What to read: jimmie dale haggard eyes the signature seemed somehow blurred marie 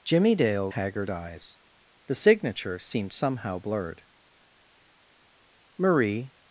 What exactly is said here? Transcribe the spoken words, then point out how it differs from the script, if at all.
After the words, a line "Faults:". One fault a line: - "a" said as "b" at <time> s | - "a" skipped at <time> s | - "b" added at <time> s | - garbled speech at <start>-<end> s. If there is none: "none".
jimmie dale haggard eyes the signature seemed somehow blurred marie
Faults:
none